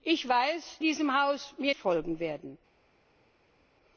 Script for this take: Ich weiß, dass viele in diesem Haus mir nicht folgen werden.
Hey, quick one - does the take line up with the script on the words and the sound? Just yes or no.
no